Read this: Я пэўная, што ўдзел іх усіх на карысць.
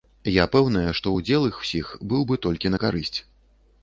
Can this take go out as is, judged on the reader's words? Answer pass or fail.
fail